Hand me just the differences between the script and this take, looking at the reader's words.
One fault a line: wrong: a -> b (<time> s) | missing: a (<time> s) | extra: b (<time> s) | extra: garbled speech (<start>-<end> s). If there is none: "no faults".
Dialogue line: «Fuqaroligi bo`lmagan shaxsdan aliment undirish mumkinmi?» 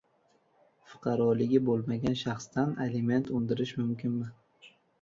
no faults